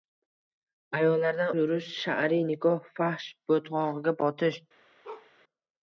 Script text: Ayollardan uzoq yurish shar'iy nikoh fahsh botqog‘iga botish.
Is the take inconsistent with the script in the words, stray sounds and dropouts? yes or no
yes